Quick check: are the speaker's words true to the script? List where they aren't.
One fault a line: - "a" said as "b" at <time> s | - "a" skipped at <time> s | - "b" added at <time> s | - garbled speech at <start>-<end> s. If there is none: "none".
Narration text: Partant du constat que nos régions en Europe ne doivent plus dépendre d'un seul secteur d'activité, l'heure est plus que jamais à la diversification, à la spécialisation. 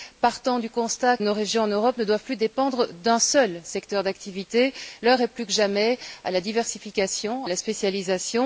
- "que" skipped at 1.2 s
- "à" skipped at 7.5 s